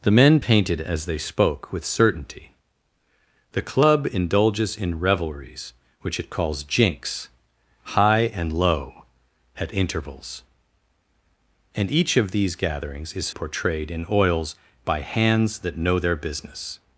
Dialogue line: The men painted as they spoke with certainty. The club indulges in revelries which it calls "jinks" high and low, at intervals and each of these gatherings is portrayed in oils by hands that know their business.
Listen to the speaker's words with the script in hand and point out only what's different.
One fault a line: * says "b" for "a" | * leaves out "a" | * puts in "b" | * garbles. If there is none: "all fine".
all fine